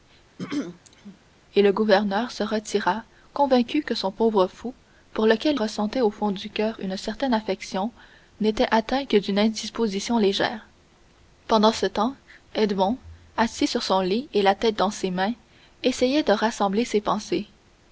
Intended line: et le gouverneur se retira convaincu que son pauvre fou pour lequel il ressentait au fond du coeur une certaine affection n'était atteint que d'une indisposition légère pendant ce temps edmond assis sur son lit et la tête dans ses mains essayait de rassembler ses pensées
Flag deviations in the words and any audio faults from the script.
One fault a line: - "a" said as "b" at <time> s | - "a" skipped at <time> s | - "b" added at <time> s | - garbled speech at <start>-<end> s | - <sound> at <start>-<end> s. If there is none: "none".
- throat clearing at 0.4-1.2 s
- "il" skipped at 5.6 s